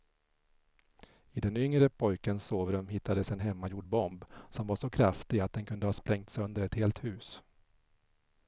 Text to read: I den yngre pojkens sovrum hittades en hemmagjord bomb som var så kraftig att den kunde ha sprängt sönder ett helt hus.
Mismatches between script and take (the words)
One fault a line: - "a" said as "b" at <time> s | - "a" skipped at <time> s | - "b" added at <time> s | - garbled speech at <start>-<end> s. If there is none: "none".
none